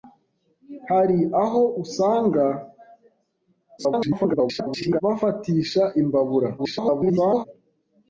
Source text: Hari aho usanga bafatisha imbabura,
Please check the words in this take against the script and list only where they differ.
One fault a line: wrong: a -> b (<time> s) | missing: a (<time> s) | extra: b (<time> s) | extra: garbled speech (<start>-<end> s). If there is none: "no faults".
extra: garbled speech (3.8-5.0 s)
extra: garbled speech (6.6-7.4 s)